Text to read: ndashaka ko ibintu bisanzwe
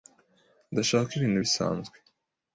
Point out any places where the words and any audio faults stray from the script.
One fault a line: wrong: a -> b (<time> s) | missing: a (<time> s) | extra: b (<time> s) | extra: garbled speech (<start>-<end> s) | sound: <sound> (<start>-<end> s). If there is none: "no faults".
no faults